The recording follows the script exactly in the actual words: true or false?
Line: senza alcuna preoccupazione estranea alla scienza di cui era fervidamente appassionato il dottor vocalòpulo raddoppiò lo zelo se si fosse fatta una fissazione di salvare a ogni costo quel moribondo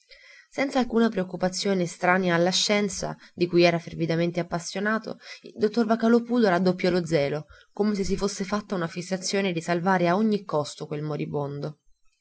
false